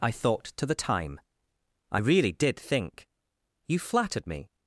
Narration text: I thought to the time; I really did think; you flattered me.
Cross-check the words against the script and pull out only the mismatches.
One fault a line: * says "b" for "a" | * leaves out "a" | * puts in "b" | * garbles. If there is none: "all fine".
all fine